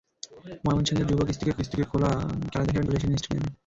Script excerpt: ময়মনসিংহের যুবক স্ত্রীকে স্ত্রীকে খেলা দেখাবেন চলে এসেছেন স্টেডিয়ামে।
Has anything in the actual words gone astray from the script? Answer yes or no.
no